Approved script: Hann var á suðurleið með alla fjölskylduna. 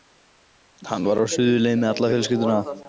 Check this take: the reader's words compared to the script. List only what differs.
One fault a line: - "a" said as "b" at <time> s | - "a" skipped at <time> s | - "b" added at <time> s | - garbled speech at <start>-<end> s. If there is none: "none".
none